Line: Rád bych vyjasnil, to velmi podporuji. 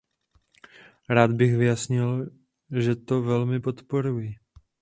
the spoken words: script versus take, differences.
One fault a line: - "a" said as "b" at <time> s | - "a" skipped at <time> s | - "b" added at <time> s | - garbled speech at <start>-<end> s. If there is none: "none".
- "že" added at 2.8 s